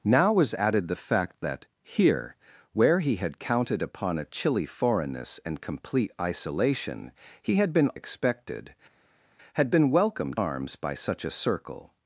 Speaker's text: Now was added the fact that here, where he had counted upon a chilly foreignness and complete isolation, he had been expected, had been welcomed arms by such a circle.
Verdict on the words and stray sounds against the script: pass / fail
pass